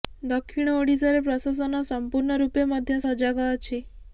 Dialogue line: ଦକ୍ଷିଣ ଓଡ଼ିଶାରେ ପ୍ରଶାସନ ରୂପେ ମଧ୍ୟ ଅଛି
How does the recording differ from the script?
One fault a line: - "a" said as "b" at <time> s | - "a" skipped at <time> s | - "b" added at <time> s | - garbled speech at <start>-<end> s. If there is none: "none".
- "ସମ୍ପୂର୍ଣ୍ଣ" added at 1.9 s
- "ସଜାଗ" added at 3.0 s